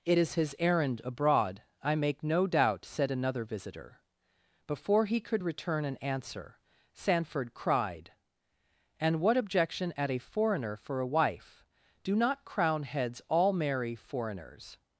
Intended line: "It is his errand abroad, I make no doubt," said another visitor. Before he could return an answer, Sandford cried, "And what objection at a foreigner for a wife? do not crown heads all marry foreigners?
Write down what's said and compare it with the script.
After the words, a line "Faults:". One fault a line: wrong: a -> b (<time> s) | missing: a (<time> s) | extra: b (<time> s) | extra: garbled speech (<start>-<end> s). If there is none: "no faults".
"It is his errand abroad, I make no doubt," said another visitor. Before he could return an answer, Sandford cried, "And what objection at a foreigner for a wife? do not crown heads all marry foreigners?
Faults:
no faults